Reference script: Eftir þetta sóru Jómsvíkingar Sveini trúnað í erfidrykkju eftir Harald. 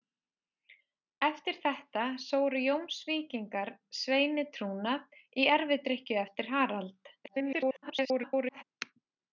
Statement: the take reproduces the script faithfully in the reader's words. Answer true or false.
false